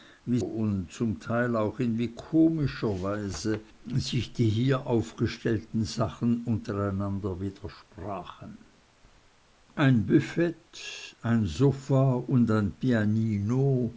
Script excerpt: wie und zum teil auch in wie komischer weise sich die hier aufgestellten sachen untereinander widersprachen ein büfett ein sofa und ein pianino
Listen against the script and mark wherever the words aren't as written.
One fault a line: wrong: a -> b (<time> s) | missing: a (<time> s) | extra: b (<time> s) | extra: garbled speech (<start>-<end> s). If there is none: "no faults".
no faults